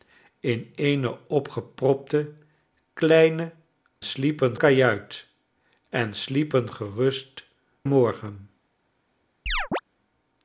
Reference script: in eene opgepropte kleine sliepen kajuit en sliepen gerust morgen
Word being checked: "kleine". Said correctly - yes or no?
yes